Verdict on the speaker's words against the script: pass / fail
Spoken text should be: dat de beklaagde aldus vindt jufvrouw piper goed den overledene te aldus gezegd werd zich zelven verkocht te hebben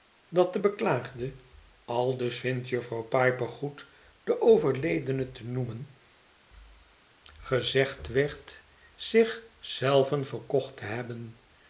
fail